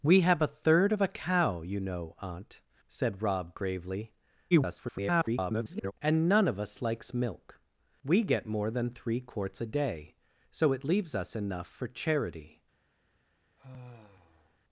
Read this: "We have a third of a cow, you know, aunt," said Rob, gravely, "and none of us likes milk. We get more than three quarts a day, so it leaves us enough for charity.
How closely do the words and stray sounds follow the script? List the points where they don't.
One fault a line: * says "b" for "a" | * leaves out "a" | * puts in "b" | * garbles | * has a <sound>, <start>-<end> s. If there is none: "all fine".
* garbles
* has a sigh, 13.6-14.6 s